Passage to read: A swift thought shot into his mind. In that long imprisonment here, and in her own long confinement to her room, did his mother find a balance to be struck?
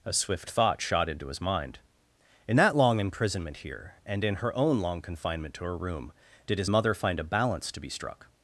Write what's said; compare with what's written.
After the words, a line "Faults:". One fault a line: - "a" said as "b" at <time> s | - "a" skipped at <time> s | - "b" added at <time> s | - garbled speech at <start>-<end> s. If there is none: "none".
A swift thought shot into his mind. In that long imprisonment here, and in her own long confinement to her room, did his mother find a balance to be struck?
Faults:
none